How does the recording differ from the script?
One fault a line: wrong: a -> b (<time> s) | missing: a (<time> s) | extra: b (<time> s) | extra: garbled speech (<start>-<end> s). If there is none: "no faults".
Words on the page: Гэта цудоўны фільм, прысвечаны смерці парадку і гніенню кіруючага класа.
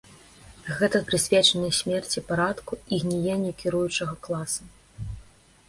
missing: цудоўны фільм (1.0 s)